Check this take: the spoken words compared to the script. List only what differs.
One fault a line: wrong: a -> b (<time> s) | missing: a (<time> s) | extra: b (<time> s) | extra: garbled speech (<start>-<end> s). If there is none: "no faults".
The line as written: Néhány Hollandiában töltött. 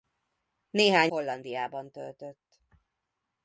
no faults